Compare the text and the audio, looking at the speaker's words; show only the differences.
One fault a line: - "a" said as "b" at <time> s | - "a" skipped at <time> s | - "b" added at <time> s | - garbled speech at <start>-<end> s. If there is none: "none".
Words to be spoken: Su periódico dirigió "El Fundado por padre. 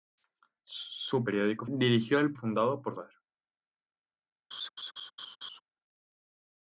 none